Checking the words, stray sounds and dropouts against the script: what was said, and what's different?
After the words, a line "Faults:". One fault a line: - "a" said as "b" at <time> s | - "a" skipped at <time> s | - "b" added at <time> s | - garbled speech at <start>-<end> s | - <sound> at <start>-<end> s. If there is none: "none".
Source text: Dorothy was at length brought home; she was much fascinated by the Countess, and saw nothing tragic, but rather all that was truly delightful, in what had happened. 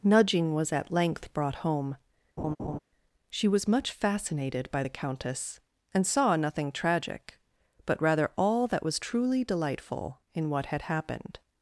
Nudging was at length brought home; she was much fascinated by the Countess, and saw nothing tragic, but rather all that was truly delightful, in what had happened.
Faults:
- "Dorothy" said as "Nudging" at 0.0 s
- laugh at 2.4-2.8 s